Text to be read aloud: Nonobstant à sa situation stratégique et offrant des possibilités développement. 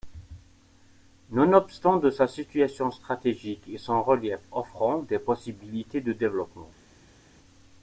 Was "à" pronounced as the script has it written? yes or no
no